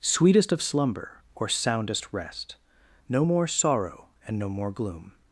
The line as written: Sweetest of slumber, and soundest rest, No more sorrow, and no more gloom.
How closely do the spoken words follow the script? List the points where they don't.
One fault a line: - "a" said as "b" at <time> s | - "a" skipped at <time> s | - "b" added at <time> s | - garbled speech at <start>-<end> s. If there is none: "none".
- "and" said as "or" at 1.4 s